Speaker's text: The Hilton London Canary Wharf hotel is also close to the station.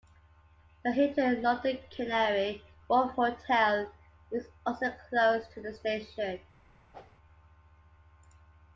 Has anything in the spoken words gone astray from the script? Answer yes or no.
no